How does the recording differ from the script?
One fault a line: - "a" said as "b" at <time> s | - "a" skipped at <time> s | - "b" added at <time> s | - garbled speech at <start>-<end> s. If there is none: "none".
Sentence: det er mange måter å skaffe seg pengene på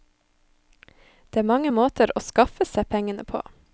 none